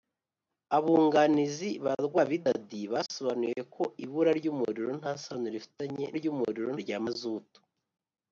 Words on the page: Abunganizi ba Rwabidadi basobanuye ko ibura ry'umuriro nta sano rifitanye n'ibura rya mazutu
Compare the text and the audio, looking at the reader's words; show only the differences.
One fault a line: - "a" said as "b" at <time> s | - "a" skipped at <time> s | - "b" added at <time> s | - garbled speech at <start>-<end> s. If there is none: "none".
- "n'ibura" said as "ry'umuriro" at 6.2 s